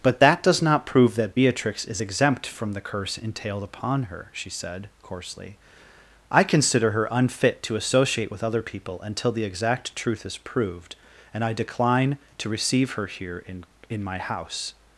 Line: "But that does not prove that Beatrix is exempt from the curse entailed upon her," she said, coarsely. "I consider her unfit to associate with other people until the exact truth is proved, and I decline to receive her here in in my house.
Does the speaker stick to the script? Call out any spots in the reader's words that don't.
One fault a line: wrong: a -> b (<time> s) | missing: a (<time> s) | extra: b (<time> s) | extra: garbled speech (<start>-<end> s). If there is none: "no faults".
no faults